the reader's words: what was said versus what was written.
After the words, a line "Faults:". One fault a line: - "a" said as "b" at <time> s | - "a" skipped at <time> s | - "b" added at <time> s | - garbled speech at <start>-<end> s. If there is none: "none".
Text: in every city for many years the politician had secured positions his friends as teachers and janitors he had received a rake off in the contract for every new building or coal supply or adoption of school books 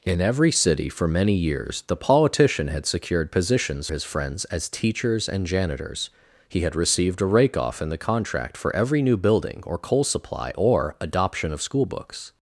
in every city for many years the politician had secured positions his friends as teachers and janitors he had received a rake off in the contract for every new building or coal supply or adoption of school books
Faults:
none